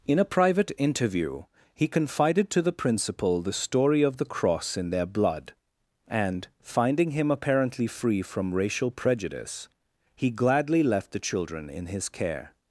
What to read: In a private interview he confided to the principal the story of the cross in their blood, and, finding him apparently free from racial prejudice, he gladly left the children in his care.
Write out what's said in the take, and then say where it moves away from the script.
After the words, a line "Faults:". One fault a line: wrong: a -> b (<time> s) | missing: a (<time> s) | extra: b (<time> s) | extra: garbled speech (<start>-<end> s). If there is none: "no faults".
In a private interview he confided to the principal the story of the cross in their blood, and, finding him apparently free from racial prejudice, he gladly left the children in his care.
Faults:
no faults